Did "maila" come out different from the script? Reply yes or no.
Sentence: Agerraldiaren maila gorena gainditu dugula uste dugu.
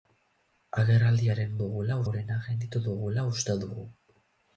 yes